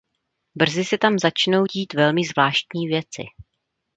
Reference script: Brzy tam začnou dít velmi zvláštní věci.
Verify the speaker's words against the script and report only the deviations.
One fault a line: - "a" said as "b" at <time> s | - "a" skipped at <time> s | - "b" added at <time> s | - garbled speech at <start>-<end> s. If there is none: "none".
- "se" added at 0.8 s